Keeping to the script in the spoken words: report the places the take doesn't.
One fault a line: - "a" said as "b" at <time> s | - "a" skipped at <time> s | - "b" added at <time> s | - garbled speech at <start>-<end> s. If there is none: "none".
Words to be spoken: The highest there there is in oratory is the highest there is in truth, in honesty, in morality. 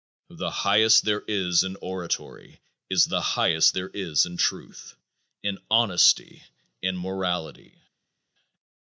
- "there" skipped at 1.2 s